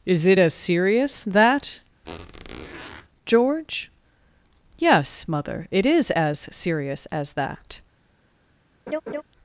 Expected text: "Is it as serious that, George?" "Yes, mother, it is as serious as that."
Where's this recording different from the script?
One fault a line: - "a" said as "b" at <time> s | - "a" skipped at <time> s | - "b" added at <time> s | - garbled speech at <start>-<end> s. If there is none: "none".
none